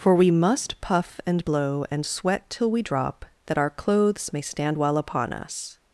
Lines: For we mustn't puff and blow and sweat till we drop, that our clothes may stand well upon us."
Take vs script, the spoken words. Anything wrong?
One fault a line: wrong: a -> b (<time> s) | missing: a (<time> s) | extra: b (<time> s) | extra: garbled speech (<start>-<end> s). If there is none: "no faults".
wrong: mustn't -> must (0.3 s)